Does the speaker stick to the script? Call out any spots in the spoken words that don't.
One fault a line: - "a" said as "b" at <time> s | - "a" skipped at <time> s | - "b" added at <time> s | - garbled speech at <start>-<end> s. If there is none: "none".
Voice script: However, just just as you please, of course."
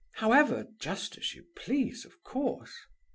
- "just" skipped at 1.1 s